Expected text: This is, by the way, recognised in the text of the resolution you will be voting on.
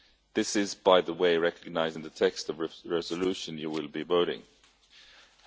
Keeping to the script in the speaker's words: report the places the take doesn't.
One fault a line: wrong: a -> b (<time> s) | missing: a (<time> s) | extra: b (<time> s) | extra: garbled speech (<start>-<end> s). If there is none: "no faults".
no faults